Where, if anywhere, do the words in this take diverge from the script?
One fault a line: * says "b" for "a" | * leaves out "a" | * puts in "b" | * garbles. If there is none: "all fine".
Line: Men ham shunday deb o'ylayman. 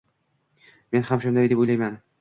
all fine